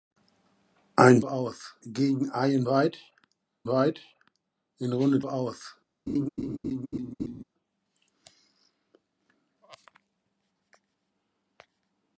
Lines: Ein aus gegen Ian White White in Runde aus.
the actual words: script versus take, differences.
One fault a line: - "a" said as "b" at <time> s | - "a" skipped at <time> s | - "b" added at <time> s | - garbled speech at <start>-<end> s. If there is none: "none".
none